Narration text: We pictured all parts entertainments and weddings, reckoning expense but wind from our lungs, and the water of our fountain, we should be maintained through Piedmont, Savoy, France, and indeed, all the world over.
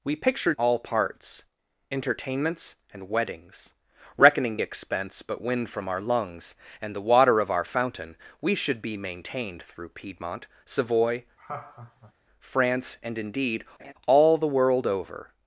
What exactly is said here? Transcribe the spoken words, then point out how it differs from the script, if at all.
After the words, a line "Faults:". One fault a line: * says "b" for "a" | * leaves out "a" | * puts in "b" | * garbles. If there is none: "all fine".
We pictured all parts entertainments and weddings, reckoning expense but wind from our lungs, and the water of our fountain, we should be maintained through Piedmont, Savoy, France, and indeed, all the world over.
Faults:
all fine